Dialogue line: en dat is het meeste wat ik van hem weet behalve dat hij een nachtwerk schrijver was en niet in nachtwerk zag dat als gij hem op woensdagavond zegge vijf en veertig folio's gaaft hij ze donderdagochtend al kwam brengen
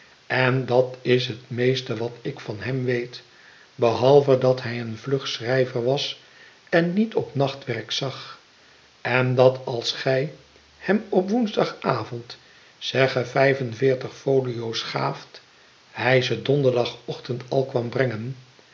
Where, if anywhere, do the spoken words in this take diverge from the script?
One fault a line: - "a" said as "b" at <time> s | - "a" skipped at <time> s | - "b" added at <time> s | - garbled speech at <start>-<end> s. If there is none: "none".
- "nachtwerk" said as "vlug" at 5.0 s
- "in" said as "op" at 7.2 s
- "en" added at 9.0 s